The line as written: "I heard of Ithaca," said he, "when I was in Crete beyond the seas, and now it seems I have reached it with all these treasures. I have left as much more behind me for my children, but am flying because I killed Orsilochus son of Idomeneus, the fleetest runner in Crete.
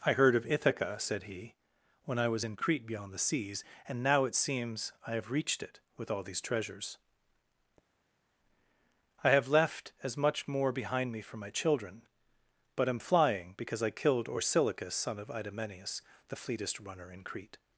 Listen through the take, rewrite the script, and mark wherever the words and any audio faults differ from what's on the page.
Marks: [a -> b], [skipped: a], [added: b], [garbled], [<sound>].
"I heard of Ithaca," said he, "when I was in Crete beyond the seas, and now it seems I have reached it with all these treasures. I have left as much more behind me for my children, but am flying because I killed Orsilochus son of Idomeneus, the fleetest runner in Crete.